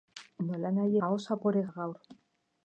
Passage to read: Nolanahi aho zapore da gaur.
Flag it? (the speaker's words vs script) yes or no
no